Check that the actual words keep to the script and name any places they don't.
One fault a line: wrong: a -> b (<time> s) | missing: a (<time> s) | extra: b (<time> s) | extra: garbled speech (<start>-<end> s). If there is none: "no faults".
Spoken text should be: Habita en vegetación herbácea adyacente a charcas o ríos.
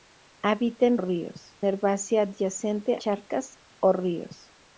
wrong: vegetación -> ríos (1.0 s)
missing: a (3.0 s)